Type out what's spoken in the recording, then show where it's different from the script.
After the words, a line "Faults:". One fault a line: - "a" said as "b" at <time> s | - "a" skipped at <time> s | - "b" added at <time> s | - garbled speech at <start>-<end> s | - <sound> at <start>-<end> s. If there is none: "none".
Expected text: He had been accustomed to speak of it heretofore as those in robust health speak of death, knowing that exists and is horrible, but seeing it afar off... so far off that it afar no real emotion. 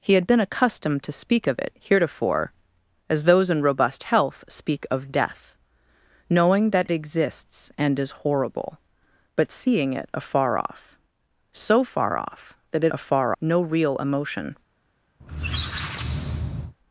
He had been accustomed to speak of it heretofore as those in robust health speak of death, knowing that exists and is horrible, but seeing it afar off... so far off that it afar no real emotion.
Faults:
- squeak at 15.2-16.7 s